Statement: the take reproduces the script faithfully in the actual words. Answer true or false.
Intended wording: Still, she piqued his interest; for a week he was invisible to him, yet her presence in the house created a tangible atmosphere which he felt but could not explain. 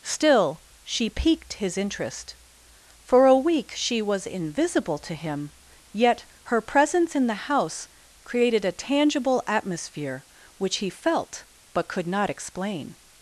false